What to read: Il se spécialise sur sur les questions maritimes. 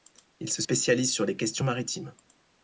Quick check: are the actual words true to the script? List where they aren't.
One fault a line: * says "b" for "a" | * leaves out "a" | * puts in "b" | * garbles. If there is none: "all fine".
* leaves out "sur"